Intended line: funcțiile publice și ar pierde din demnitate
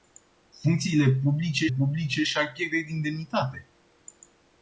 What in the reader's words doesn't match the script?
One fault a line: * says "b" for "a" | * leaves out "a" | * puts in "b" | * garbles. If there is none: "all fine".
* puts in "publice"